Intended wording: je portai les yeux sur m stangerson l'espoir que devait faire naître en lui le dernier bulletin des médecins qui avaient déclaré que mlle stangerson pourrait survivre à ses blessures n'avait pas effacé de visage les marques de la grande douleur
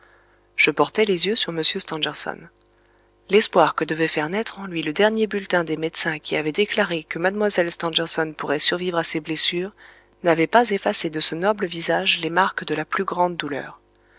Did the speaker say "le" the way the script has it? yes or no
yes